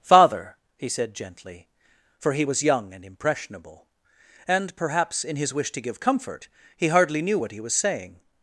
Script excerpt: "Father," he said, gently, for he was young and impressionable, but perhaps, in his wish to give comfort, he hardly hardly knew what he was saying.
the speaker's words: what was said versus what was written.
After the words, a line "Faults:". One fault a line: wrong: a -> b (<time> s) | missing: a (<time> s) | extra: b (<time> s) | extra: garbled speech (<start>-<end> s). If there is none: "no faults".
"Father," he said, gently, for he was young and impressionable, and perhaps, in his wish to give comfort, he hardly knew what he was saying.
Faults:
wrong: but -> and (4.5 s)
missing: hardly (7.2 s)